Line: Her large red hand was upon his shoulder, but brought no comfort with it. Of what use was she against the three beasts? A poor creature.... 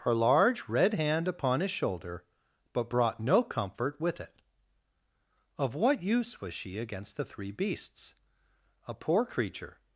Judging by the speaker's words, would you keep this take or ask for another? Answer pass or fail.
fail